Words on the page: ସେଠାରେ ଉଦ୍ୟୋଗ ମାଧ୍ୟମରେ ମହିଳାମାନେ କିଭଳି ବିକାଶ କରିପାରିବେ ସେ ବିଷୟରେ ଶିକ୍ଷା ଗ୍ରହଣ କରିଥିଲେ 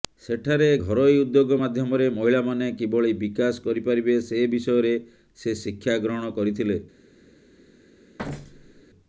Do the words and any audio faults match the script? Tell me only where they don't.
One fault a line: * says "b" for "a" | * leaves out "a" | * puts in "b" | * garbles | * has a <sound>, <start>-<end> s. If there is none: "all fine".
* puts in "ଘରୋଇ"
* puts in "ସେ"
* has a thud, 8.2-8.8 s